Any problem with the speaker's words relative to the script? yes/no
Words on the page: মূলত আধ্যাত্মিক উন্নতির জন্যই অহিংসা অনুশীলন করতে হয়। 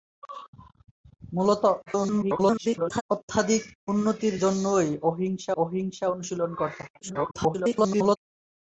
yes